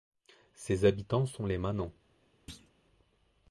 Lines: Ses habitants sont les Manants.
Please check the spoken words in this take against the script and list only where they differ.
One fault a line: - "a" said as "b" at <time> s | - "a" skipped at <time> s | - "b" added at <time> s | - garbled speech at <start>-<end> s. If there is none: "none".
none